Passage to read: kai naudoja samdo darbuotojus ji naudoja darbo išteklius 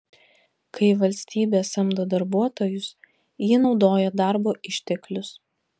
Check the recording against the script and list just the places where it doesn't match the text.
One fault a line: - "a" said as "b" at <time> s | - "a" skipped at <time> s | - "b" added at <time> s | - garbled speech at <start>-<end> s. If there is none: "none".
- "naudoja" said as "valstybė" at 1.0 s